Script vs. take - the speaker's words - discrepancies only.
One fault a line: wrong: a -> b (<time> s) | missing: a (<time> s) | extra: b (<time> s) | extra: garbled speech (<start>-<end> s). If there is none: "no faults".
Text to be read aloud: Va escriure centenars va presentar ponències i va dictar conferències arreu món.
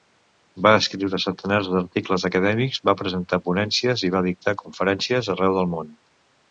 extra: d'articles acadèmics (1.8 s)
extra: del (5.6 s)